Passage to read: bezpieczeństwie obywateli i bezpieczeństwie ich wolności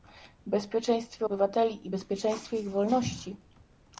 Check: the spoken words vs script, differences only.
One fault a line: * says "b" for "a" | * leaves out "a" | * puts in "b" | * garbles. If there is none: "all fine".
all fine